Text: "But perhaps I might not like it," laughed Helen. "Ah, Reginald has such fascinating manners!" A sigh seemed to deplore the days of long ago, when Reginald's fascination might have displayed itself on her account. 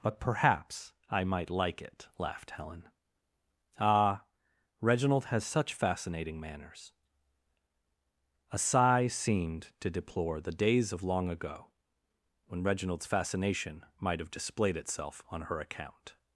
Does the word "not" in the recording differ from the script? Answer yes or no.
yes